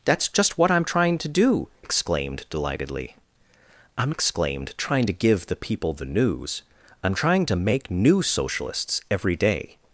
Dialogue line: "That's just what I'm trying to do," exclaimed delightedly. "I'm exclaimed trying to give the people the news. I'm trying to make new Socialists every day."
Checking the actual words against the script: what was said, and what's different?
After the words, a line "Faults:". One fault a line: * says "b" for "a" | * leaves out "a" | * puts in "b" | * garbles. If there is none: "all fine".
"That's just what I'm trying to do," exclaimed delightedly. "I'm exclaimed trying to give the people the news. I'm trying to make new Socialists every day."
Faults:
all fine